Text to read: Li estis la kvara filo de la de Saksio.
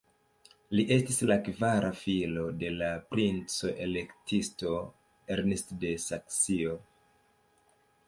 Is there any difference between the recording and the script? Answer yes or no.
yes